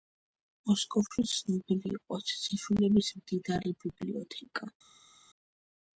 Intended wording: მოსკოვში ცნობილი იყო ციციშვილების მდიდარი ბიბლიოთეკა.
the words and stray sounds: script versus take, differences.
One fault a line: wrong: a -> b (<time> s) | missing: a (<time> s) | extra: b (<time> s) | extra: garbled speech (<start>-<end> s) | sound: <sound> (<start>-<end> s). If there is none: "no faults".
no faults